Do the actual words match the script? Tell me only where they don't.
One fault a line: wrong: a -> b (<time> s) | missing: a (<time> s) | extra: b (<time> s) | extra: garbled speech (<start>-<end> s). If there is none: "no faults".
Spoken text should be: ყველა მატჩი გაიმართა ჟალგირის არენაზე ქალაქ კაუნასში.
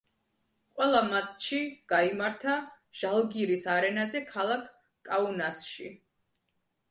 no faults